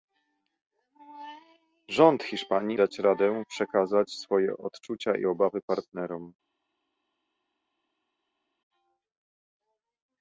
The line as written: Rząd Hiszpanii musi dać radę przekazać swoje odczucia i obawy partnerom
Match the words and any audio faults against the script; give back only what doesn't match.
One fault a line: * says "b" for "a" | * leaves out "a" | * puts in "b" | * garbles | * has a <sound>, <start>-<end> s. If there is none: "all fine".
* leaves out "musi"